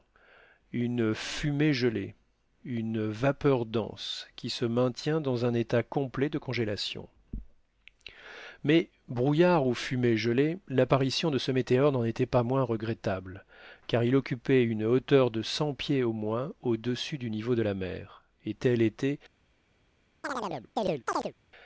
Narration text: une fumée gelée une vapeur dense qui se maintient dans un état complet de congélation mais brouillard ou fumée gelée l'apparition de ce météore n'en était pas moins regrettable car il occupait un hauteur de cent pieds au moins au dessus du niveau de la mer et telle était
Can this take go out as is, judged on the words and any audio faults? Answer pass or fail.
fail